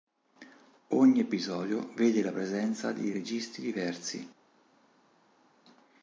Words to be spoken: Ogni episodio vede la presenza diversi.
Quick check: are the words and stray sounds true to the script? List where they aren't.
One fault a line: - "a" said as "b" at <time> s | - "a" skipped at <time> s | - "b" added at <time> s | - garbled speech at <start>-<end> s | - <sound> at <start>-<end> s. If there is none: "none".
- "di registi" added at 2.9 s